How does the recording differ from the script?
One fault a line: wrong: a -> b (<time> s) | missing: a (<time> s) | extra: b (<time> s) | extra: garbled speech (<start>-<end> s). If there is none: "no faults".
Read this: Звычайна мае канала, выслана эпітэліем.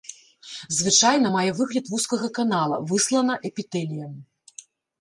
extra: выгляд вузкага (1.6 s)